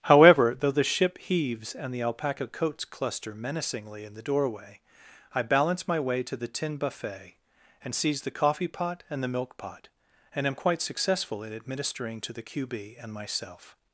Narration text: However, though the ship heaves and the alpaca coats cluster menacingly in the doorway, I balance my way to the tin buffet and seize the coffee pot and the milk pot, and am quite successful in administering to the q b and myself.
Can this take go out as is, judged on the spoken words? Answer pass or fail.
pass